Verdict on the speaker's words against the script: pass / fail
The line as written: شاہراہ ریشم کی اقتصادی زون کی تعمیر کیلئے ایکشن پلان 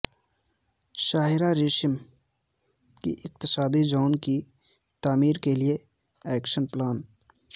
pass